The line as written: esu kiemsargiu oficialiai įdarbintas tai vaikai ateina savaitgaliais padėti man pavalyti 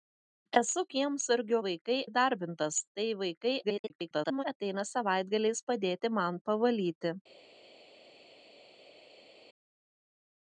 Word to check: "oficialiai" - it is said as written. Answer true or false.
false